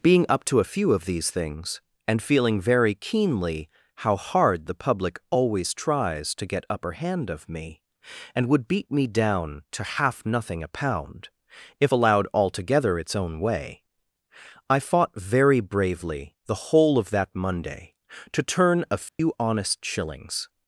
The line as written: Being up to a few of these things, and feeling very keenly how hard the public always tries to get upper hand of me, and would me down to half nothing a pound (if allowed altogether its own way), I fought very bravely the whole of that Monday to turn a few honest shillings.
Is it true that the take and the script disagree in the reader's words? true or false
true